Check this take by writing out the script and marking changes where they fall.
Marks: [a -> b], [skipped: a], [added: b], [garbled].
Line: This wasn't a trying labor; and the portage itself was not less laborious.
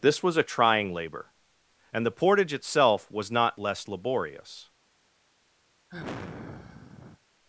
This [wasn't -> was] a trying labor; and the portage itself was not less laborious.